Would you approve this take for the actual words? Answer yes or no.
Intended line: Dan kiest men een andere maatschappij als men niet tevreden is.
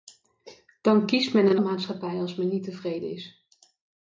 no